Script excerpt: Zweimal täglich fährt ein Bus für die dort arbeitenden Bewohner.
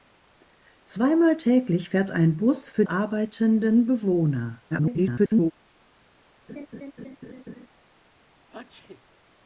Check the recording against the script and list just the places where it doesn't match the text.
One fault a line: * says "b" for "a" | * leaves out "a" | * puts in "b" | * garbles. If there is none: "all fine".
* leaves out "die dort"
* garbles